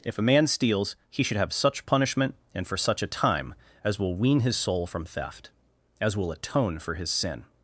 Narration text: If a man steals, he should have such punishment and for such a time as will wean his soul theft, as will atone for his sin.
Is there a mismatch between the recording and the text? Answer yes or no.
yes